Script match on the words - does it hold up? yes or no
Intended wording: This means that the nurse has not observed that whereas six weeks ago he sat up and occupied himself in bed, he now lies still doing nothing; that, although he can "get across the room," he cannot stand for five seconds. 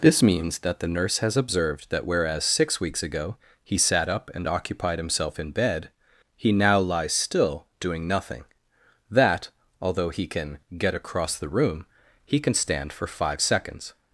no